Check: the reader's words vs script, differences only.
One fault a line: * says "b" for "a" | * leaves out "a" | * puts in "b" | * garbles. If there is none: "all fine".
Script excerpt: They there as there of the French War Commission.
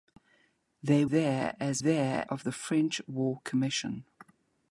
all fine